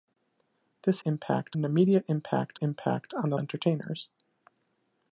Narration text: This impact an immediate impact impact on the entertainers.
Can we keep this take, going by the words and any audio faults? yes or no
yes